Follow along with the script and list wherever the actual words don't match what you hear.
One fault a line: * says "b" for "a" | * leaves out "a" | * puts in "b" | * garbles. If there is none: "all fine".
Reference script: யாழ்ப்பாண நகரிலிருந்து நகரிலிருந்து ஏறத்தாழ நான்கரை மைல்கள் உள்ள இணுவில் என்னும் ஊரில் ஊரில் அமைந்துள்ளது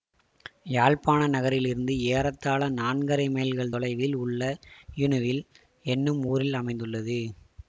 * leaves out "நகரிலிருந்து"
* puts in "தொலைவில்"
* leaves out "ஊரில்"